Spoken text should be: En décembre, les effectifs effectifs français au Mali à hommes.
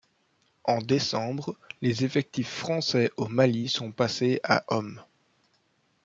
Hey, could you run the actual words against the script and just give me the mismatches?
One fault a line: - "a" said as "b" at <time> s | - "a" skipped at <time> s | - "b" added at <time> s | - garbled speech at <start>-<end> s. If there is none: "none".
- "effectifs" skipped at 2.5 s
- "sont passés" added at 3.7 s